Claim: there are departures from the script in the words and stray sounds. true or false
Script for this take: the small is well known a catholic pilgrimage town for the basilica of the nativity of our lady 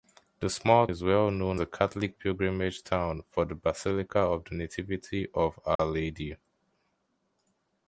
true